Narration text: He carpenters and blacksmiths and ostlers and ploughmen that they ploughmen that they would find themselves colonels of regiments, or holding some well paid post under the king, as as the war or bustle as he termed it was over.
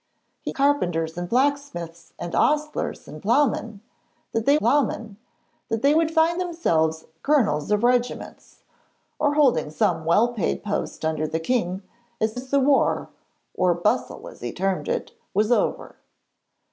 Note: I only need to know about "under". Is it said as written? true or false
true